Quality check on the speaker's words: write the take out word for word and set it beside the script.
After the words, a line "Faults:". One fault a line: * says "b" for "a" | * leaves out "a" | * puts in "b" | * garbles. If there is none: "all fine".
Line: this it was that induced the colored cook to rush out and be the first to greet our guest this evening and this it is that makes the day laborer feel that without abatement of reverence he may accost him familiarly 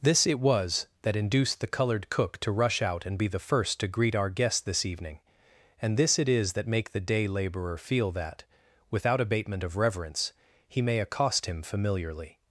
this it was that induced the colored cook to rush out and be the first to greet our guest this evening and this it is that make the day laborer feel that without abatement of reverence he may accost him familiarly
Faults:
* says "make" for "makes"